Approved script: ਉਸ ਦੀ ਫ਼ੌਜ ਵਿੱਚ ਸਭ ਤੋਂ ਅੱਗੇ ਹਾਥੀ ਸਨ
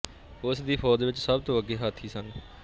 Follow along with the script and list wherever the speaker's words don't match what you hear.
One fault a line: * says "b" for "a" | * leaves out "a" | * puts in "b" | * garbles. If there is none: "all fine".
all fine